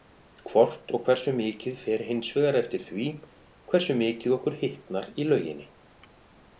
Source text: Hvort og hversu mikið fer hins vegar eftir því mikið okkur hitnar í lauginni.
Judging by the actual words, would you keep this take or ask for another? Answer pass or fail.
fail